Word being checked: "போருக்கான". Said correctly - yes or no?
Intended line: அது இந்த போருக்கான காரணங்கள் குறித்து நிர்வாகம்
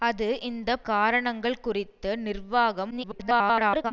no